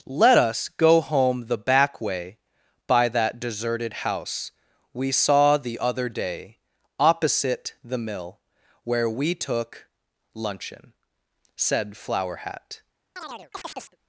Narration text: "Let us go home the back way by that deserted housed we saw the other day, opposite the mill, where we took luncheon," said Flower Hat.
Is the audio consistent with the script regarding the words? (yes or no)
no